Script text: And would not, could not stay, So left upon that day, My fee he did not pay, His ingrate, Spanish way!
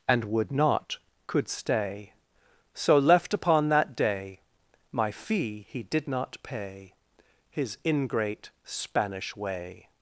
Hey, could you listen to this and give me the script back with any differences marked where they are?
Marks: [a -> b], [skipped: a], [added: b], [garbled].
And would not, could [skipped: not] stay, So left upon that day, My fee he did not pay, His ingrate, Spanish way!